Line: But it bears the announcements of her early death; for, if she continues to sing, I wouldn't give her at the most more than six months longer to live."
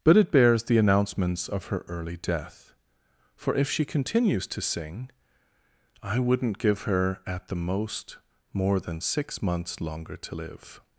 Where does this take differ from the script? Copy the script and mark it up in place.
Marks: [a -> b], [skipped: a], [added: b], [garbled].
But it bears the announcements of her early death; for, if she continues to sing, I wouldn't give her at the most more than six months longer to live."